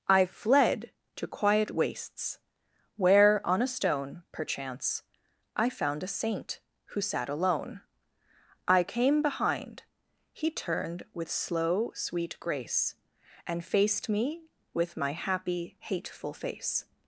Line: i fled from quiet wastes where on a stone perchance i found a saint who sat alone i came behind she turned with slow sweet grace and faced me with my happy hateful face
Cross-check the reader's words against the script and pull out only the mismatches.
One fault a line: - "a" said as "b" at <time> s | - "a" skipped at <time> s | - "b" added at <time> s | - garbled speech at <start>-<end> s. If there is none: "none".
- "from" said as "to" at 1.1 s
- "she" said as "he" at 10.3 s